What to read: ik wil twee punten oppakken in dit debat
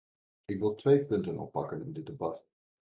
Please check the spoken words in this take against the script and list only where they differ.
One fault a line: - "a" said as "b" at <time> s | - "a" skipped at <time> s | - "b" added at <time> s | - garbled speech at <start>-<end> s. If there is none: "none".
none